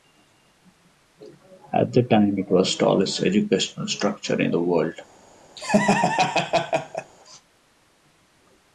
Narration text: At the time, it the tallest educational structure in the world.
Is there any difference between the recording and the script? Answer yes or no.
yes